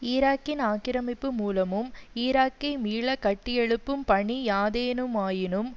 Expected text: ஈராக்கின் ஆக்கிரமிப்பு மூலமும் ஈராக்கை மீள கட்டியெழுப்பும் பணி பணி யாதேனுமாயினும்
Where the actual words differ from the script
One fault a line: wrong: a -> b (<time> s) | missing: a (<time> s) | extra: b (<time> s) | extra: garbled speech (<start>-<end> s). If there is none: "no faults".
missing: பணி (4.4 s)